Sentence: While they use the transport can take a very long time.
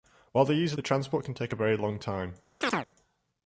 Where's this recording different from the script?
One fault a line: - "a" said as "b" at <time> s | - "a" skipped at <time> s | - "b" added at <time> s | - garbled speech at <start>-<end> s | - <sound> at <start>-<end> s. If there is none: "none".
- chirp at 2.6-2.9 s